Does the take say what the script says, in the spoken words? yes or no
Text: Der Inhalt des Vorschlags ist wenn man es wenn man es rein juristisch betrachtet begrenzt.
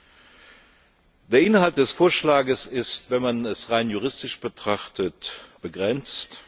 no